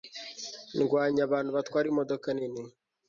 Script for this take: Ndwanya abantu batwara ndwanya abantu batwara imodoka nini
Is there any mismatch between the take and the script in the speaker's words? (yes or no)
yes